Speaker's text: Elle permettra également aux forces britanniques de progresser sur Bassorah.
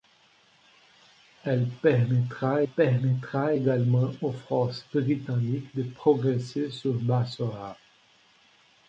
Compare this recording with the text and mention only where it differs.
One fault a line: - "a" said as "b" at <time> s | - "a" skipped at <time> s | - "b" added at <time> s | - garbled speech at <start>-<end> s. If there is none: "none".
- "permettra" added at 2.6 s